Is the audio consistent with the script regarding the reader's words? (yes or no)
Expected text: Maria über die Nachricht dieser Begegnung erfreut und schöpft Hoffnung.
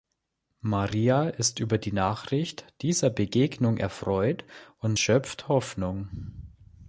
no